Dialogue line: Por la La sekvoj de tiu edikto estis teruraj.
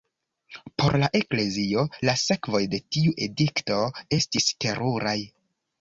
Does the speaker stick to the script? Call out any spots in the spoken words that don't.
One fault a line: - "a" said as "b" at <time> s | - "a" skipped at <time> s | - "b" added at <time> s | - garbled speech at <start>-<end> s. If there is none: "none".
- "Eklezio" added at 1.2 s